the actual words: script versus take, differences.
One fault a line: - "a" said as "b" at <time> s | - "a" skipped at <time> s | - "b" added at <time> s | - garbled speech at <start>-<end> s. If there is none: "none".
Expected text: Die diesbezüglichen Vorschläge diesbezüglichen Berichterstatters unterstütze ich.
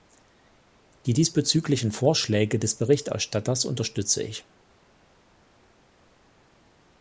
- "diesbezüglichen" said as "des" at 2.6 s